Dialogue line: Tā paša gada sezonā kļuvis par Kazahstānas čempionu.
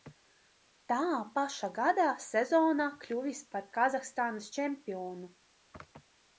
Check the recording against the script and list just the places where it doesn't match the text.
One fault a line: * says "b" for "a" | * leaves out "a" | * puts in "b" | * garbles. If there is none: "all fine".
all fine